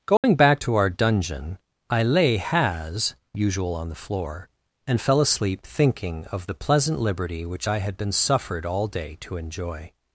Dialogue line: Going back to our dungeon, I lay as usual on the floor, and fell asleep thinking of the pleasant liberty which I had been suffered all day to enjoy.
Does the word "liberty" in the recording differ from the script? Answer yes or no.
no